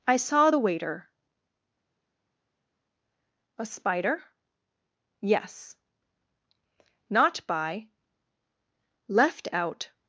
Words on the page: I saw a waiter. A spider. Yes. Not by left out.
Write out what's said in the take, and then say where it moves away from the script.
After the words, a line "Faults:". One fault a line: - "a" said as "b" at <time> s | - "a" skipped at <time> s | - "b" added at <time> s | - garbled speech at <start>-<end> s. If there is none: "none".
I saw the waiter. A spider. Yes. Not by left out.
Faults:
- "a" said as "the" at 0.5 s